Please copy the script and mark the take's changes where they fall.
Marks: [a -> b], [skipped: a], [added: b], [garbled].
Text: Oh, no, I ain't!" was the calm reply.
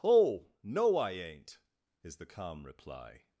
Oh, no, I ain't!" [was -> is] the calm reply.